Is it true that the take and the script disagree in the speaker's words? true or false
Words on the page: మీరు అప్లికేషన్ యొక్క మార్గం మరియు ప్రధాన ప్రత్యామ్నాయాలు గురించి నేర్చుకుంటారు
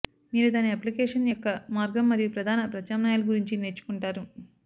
true